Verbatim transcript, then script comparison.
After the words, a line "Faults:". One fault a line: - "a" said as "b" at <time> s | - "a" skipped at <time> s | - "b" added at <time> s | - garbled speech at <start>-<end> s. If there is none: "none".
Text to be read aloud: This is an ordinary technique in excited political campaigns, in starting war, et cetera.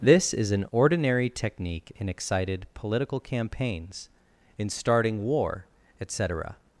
This is an ordinary technique in excited political campaigns, in starting war, et cetera.
Faults:
none